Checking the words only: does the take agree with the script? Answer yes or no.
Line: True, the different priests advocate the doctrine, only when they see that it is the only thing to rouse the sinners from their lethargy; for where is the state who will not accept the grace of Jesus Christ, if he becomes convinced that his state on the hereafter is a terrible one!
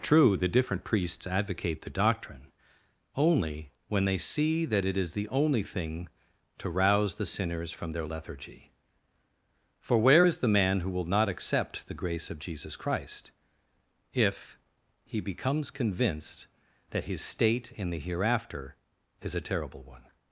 no